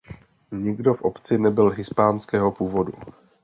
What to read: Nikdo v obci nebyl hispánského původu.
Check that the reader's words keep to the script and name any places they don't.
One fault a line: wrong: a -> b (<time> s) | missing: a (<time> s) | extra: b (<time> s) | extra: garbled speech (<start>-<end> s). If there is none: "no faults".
no faults